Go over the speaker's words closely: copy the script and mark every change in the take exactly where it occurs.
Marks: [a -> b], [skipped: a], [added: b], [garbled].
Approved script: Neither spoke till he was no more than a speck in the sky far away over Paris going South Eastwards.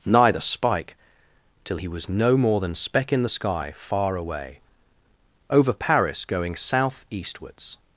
Neither [spoke -> spike] till he was no more than [skipped: a] speck in the sky far away over Paris going South Eastwards.